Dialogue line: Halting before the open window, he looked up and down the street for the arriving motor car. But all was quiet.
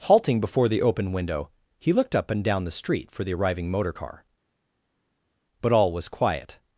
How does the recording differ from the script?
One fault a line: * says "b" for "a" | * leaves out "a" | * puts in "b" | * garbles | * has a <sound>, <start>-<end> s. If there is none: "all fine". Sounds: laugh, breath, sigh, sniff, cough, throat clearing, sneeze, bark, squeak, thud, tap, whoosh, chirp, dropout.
all fine